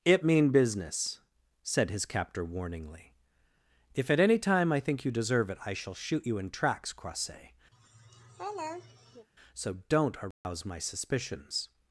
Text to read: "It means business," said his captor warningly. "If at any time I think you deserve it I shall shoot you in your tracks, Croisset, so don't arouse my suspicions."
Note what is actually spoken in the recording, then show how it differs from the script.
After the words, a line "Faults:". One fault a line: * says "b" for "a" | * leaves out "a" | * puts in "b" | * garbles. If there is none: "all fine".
"It mean business," said his captor warningly. "If at any time I think you deserve it I shall shoot you in tracks, Croisset, so don't arouse my suspicions."
Faults:
* says "mean" for "means"
* leaves out "your"